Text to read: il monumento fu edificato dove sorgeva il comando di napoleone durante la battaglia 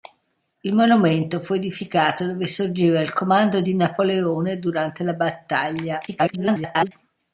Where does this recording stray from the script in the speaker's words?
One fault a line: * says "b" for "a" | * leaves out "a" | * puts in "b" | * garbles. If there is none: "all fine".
* garbles